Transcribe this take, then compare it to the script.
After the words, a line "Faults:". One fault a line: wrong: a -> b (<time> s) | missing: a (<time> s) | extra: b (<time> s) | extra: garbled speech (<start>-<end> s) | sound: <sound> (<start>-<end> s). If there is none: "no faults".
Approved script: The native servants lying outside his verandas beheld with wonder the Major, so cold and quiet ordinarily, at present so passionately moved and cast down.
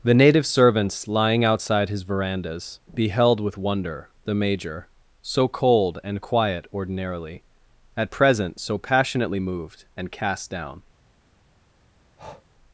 The native servants lying outside his verandas beheld with wonder the Major, so cold and quiet ordinarily, at present so passionately moved and cast down.
Faults:
sound: breath (12.2-12.4 s)